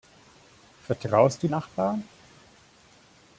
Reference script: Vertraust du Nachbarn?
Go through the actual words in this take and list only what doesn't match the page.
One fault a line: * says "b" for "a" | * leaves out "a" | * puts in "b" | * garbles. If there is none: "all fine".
all fine